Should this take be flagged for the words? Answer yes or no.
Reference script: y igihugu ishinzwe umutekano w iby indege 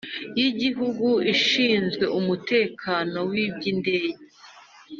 no